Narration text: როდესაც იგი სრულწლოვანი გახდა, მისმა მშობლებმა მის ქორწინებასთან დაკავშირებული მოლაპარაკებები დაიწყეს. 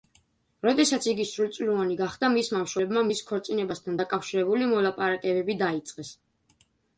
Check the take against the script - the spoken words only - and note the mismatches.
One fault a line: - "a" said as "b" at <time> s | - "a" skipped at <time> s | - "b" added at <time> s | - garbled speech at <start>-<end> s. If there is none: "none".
none